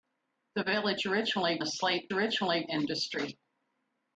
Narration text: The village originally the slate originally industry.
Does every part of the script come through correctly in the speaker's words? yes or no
yes